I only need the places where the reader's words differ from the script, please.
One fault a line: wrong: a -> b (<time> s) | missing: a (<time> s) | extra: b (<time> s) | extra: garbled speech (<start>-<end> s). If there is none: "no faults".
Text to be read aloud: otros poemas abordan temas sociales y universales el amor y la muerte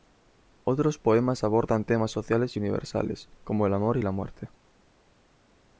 extra: como (3.4 s)